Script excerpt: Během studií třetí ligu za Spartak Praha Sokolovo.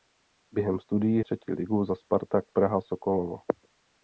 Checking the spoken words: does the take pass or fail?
pass